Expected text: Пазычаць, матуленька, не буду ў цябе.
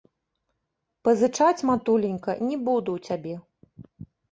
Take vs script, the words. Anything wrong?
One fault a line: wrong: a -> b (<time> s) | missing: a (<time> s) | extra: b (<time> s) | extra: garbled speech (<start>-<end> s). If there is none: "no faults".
no faults